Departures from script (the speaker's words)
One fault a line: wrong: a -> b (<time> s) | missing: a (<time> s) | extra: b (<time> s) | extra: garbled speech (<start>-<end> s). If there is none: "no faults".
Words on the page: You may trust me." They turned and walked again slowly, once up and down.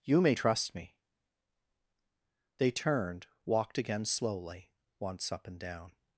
missing: and (3.3 s)